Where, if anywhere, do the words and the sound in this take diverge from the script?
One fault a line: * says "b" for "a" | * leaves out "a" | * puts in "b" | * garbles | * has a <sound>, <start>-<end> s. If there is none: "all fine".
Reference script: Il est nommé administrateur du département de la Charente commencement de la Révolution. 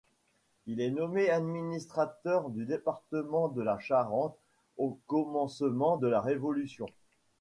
* puts in "au"